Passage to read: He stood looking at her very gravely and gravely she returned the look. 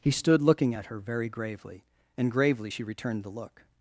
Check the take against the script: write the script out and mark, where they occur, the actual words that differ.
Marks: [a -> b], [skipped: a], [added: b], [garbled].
He stood looking at her very gravely and gravely she returned the look.